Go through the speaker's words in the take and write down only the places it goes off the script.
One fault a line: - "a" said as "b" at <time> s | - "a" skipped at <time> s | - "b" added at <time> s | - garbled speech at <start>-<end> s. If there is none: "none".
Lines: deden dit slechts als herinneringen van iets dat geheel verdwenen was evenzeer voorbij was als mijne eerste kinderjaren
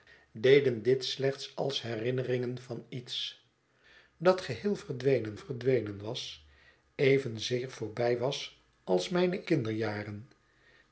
- "verdwenen" added at 5.3 s
- "eerste" skipped at 9.5 s